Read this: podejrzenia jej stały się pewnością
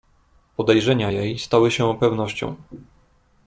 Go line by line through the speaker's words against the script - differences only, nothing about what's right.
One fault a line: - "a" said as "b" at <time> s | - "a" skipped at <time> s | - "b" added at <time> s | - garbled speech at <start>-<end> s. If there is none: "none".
none